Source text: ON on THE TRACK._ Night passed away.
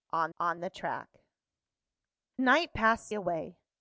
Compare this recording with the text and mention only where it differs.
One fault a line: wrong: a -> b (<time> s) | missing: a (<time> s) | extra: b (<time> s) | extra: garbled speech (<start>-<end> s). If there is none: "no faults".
no faults